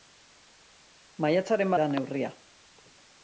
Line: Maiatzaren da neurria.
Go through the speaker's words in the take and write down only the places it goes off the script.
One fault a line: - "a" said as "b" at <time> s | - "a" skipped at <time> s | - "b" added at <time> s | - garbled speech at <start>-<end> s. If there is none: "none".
none